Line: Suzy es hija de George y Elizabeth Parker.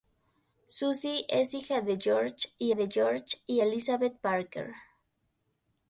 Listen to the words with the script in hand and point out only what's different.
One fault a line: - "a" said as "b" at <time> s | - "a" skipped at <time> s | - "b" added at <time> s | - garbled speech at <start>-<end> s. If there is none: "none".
- "de George y" added at 2.7 s